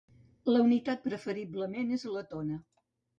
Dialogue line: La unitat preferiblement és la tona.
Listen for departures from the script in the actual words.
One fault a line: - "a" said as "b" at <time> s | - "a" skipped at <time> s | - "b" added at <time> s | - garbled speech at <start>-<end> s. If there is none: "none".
none